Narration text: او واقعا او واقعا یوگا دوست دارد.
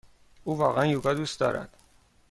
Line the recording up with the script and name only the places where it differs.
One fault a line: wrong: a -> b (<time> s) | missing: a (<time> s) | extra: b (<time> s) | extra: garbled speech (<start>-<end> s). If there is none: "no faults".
missing: او واقعا (0.8 s)